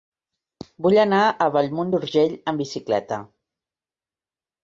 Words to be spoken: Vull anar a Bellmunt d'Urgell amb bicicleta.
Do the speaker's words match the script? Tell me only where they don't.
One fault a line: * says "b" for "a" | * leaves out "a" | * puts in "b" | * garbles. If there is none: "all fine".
all fine